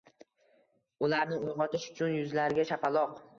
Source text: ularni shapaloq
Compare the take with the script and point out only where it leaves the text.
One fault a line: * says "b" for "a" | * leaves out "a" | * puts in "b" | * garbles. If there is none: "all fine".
* puts in "uyg‘otish uchun yuzlariga"